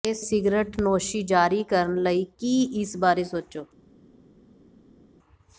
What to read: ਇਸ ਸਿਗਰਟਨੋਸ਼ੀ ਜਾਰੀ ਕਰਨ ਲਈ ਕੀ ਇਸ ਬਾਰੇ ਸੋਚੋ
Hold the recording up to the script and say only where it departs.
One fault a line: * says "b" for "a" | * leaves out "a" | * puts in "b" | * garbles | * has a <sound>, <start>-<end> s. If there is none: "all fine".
all fine